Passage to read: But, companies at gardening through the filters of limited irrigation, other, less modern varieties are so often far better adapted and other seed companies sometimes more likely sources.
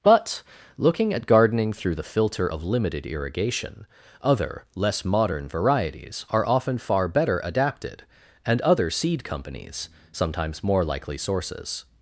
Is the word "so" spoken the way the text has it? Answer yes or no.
no